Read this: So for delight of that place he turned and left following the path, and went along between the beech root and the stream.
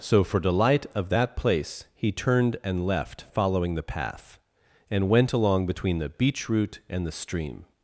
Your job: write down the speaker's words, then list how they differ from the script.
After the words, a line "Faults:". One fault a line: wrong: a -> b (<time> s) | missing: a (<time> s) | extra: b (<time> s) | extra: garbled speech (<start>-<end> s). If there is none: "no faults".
So for delight of that place he turned and left following the path, and went along between the beech root and the stream.
Faults:
no faults